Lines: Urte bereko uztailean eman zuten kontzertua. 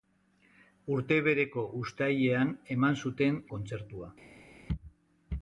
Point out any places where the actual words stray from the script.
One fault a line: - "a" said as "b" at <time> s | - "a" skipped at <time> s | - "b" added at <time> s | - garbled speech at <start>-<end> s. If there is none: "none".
none